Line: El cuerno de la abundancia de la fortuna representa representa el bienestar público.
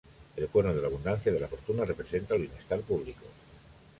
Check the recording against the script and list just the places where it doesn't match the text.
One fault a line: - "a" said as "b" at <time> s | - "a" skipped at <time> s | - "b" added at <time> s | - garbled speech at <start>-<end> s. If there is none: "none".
- "representa" skipped at 2.3 s